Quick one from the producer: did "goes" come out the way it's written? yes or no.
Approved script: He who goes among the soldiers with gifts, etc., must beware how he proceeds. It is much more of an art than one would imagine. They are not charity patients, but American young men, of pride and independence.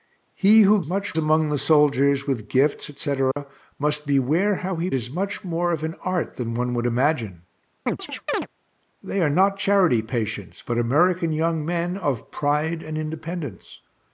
no